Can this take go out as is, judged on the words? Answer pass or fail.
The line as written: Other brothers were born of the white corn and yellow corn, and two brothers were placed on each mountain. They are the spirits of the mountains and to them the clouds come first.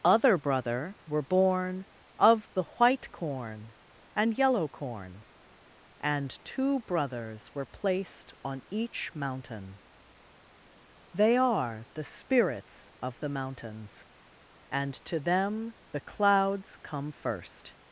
fail